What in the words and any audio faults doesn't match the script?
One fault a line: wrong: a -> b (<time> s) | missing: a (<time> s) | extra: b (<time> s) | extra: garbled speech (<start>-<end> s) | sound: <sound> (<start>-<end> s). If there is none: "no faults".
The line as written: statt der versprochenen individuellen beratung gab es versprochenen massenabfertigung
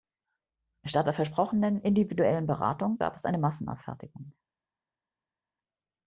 wrong: versprochenen -> eine (3.2 s)